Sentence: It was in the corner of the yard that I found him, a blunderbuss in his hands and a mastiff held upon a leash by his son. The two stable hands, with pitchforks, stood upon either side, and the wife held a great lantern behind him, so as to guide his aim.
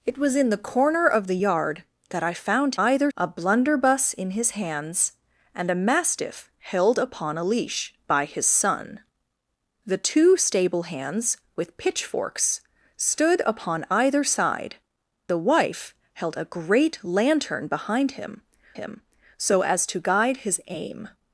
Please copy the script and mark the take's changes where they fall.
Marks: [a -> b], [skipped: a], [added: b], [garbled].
It was in the corner of the yard that I found [him, -> either] a blunderbuss in his hands and a mastiff held upon a leash by his son. The two stable hands, with pitchforks, stood upon either side, [skipped: and] the wife held a great lantern behind him, [added: him] so as to guide his aim.